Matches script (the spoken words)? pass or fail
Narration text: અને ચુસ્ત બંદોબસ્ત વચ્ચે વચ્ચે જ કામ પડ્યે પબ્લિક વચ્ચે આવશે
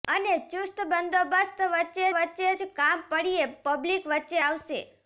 pass